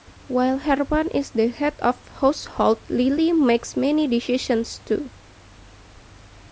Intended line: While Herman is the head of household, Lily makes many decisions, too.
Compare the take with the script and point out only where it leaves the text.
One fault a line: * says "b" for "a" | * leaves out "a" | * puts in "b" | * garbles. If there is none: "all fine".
all fine